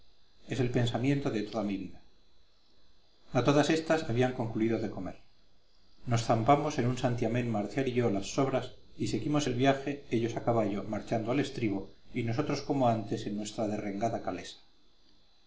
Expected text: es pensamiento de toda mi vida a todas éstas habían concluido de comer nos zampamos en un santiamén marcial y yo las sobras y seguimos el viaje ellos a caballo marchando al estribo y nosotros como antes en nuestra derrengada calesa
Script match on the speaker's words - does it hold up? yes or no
no